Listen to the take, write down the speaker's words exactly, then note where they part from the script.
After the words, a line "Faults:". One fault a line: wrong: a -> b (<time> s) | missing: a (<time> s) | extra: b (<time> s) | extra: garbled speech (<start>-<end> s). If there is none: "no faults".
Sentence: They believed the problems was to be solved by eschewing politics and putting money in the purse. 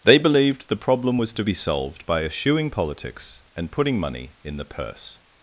They believed the problem was to be solved by eschewing politics and putting money in the purse.
Faults:
wrong: problems -> problem (0.9 s)